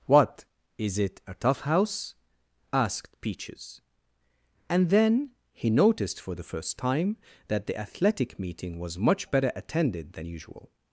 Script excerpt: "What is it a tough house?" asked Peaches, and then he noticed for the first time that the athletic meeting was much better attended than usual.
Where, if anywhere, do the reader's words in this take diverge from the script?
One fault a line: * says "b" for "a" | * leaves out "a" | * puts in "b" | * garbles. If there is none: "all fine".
all fine